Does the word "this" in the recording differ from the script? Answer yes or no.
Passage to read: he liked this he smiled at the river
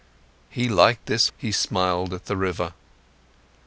no